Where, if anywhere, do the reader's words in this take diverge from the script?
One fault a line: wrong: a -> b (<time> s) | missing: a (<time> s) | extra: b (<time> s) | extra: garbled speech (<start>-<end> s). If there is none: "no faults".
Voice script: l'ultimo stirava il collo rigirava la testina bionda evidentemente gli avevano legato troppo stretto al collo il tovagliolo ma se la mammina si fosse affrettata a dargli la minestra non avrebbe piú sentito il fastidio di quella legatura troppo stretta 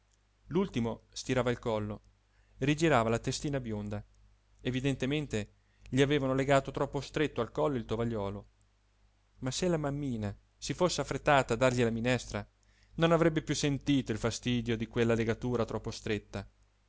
no faults